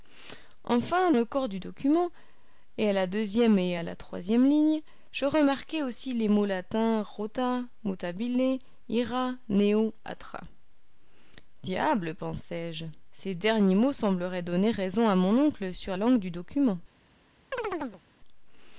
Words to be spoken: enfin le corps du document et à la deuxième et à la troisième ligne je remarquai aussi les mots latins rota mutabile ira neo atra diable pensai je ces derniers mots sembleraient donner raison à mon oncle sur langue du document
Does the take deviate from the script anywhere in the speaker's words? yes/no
no